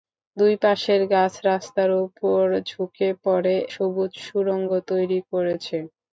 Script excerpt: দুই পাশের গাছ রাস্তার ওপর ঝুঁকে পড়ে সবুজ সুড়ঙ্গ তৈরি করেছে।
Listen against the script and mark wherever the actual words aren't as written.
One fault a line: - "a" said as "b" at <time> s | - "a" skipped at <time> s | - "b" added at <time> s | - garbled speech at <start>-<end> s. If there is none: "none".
none